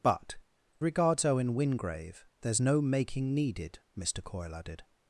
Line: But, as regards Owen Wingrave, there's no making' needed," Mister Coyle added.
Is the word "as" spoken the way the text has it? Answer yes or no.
no